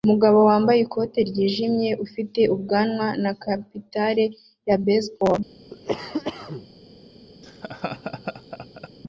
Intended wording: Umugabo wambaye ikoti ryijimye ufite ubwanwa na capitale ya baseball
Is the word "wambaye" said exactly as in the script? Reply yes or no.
yes